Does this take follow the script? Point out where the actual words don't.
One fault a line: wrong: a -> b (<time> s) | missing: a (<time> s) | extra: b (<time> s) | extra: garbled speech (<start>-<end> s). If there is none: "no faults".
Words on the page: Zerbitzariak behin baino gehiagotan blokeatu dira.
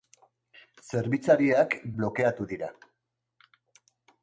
missing: behin baino gehiagotan (1.8 s)